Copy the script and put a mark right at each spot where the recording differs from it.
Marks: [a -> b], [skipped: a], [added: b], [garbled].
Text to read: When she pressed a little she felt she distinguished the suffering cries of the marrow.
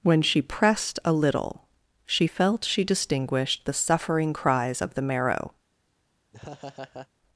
When she pressed a little she felt she distinguished the suffering cries of the marrow.